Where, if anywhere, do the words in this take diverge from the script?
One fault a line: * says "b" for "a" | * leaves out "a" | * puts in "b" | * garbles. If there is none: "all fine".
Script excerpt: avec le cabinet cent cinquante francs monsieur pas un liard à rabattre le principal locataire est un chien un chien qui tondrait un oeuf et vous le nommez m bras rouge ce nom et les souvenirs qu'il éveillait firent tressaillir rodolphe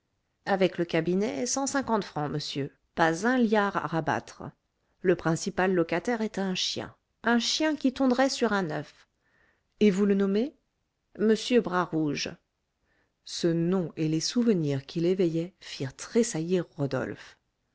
* puts in "sur"